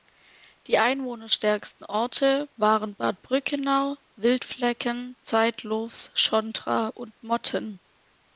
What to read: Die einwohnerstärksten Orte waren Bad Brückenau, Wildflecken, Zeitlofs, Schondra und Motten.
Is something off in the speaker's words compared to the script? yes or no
no